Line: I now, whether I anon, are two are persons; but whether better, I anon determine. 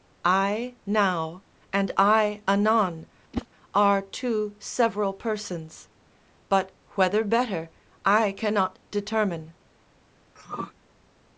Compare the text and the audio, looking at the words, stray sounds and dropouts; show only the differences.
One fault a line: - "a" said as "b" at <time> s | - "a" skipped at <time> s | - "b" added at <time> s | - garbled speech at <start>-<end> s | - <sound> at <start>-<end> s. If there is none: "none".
- "whether" said as "and" at 1.7 s
- whoosh at 3.3-3.5 s
- "are" said as "several" at 4.6 s
- "anon" said as "cannot" at 8.3 s
- throat clearing at 10.4-10.7 s